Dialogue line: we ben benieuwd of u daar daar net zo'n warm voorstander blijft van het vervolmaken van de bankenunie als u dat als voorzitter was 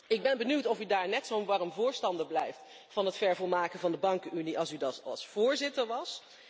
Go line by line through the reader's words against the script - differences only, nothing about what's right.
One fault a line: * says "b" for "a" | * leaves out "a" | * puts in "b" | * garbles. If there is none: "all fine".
* says "ik" for "we"
* leaves out "daar"